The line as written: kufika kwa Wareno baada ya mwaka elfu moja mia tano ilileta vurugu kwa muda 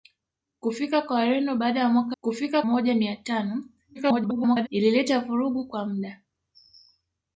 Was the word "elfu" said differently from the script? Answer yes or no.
yes